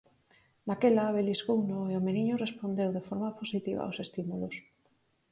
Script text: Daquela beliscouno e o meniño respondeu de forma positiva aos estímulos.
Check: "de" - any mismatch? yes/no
no